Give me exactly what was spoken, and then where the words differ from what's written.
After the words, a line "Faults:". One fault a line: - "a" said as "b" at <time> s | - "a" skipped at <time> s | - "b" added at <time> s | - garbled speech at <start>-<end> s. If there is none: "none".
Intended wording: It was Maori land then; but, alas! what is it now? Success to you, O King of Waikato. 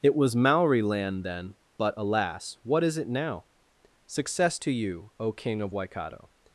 It was Maori land then; but, alas! what is it now? Success to you, O King of Waikato.
Faults:
none